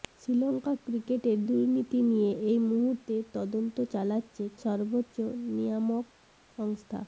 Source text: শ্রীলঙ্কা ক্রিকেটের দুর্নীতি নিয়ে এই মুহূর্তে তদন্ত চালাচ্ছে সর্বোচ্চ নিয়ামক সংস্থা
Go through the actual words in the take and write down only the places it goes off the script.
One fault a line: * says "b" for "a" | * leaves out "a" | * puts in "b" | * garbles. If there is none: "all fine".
all fine